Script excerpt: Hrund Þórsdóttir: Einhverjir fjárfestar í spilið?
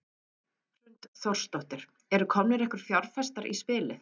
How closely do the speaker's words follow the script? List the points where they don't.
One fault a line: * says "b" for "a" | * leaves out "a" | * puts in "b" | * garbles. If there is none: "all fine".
* puts in "Eru komnir"